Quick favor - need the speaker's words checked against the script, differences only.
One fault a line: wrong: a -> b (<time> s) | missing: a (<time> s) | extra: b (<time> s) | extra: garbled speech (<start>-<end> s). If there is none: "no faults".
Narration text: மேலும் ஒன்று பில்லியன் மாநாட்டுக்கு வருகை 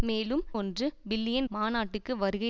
no faults